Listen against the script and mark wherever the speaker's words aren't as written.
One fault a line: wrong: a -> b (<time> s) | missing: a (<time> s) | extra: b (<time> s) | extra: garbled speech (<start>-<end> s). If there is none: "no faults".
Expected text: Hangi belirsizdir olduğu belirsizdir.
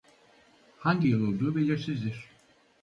wrong: belirsizdir -> yıl (1.0 s)